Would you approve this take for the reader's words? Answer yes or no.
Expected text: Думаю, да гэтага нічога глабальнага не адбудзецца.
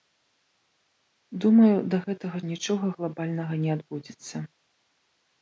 yes